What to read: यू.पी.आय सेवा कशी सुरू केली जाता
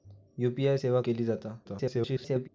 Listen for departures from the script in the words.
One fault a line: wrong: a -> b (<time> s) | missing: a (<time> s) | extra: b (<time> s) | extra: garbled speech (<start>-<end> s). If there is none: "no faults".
missing: कशी सुरू (1.0 s)
extra: garbled speech (1.6-2.5 s)